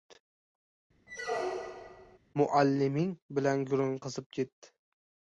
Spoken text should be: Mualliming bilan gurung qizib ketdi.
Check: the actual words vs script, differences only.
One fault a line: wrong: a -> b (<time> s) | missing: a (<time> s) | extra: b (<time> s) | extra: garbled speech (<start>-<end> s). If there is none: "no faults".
no faults